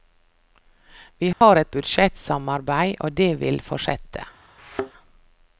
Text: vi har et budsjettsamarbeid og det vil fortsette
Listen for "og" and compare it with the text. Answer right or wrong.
right